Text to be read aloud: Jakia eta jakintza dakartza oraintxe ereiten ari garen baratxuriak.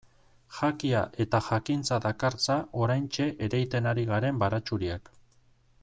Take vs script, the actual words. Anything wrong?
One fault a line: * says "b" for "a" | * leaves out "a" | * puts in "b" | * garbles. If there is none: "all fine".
all fine